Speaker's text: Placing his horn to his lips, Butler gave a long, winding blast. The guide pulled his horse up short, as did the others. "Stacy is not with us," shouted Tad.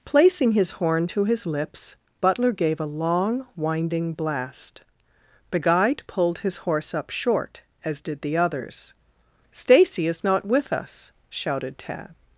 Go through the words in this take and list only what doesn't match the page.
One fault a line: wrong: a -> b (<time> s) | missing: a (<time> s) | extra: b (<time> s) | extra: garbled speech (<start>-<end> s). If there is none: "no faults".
no faults